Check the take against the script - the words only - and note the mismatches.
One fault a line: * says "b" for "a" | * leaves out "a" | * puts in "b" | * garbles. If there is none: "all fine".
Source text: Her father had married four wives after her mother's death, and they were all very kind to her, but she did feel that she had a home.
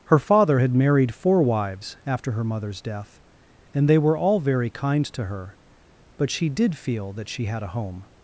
all fine